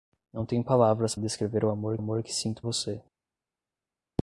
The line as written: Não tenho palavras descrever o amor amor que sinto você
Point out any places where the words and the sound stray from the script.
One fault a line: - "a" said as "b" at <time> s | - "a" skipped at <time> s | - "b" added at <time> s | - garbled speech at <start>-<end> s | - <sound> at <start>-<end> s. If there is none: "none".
none